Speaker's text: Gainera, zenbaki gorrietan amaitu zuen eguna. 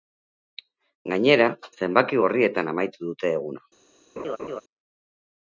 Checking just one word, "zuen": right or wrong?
wrong